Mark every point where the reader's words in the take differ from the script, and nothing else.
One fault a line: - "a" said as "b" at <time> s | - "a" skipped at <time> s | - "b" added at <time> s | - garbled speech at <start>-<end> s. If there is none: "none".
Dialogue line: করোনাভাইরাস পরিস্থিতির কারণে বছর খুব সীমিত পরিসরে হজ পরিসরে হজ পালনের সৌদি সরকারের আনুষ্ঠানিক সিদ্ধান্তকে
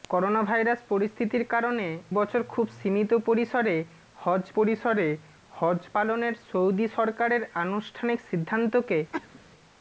none